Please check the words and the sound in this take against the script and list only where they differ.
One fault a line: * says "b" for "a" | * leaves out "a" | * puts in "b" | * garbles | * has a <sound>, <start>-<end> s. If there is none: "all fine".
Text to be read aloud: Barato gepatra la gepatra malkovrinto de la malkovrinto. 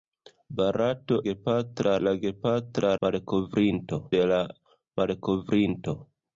all fine